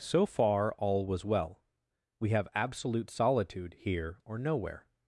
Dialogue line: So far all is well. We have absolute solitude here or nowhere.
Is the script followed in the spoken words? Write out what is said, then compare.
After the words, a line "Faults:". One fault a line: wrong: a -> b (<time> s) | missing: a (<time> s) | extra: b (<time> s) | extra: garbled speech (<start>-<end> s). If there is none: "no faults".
So far all was well. We have absolute solitude here or nowhere.
Faults:
wrong: is -> was (1.1 s)